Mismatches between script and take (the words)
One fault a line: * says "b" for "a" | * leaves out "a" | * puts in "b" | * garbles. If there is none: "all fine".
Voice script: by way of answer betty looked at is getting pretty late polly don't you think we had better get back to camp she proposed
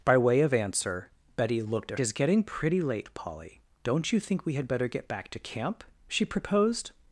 all fine